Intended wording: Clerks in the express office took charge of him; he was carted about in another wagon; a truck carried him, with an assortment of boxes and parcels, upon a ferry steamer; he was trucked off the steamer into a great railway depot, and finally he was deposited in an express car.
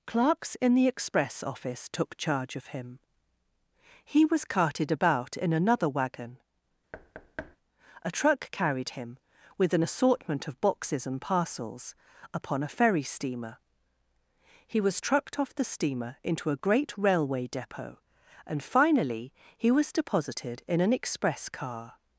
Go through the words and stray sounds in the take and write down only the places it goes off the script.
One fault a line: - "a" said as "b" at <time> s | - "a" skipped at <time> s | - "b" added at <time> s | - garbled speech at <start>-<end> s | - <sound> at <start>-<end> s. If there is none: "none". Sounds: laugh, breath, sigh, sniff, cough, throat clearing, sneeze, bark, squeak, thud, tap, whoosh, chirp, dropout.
- thud at 6.9-7.6 s